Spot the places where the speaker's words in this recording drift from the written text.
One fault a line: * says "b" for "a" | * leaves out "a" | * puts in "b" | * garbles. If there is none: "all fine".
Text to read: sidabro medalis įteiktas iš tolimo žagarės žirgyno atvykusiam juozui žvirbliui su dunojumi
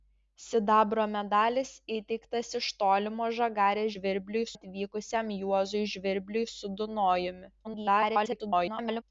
* says "žvirbliui" for "žirgyno"
* garbles